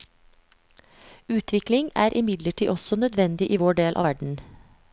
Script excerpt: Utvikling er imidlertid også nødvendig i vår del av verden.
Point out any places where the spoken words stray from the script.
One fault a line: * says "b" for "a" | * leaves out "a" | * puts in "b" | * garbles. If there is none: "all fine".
all fine